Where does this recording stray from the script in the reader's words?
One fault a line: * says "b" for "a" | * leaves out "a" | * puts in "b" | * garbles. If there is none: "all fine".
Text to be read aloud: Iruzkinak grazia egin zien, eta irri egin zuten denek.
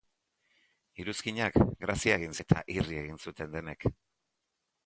* leaves out "zien"